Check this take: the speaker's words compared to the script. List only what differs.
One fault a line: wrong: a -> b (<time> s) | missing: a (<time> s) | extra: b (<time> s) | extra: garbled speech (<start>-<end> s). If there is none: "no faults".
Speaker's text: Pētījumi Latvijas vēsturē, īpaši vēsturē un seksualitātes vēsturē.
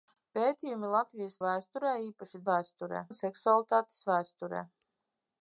no faults